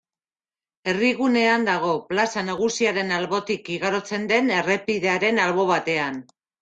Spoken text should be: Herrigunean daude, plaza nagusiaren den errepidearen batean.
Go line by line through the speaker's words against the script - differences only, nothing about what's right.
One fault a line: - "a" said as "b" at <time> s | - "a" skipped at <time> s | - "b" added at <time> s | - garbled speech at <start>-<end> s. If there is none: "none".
- "daude" said as "dago" at 1.7 s
- "albotik igarotzen" added at 3.2 s
- "albo" added at 5.5 s